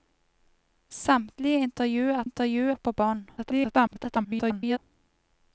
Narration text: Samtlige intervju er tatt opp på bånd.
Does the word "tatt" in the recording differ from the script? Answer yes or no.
yes